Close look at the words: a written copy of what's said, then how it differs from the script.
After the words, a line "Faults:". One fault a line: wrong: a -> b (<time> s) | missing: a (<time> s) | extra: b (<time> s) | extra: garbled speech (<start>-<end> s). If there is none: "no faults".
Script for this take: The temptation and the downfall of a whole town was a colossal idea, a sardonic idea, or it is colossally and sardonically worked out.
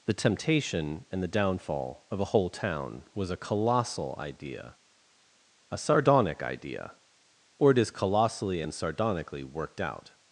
The temptation and the downfall of a whole town was a colossal idea, a sardonic idea, or it is colossally and sardonically worked out.
Faults:
no faults